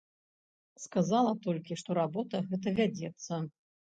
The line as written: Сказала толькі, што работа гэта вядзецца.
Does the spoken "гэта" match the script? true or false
true